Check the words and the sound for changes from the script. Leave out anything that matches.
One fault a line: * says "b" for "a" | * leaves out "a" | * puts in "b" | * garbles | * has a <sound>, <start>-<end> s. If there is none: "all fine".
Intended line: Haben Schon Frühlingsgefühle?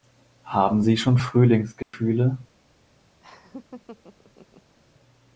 * puts in "Sie"
* has a dropout, 1.8-1.9 s
* has a laugh, 3.2-4.8 s